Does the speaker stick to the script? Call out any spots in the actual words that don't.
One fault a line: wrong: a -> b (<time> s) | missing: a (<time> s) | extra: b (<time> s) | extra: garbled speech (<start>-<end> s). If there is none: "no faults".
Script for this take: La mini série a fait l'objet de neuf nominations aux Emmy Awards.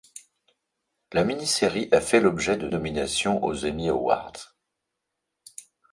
missing: neuf (2.7 s)